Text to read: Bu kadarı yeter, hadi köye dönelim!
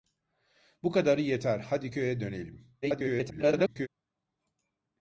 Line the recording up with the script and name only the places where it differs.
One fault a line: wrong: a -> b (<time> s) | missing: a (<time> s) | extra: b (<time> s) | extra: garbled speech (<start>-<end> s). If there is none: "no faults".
extra: garbled speech (2.8-3.9 s)